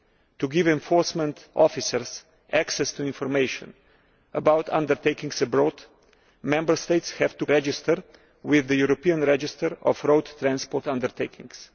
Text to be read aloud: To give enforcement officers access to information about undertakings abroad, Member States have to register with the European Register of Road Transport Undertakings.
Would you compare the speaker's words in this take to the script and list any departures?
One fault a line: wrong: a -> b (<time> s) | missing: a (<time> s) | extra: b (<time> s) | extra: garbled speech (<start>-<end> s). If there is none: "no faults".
no faults